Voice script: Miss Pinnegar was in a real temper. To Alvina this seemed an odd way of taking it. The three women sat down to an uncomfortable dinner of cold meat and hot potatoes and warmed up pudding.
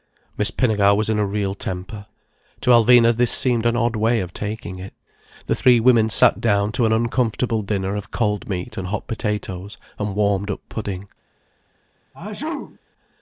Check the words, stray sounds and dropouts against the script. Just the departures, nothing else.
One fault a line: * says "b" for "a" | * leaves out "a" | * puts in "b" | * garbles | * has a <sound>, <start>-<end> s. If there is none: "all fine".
* has a sneeze, 12.1-12.8 s